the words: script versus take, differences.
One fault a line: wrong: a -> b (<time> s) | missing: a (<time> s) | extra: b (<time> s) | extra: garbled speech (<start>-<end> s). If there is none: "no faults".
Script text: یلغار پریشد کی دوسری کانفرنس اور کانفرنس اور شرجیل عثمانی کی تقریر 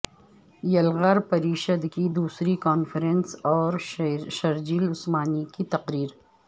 missing: کانفرنس اور (3.7 s)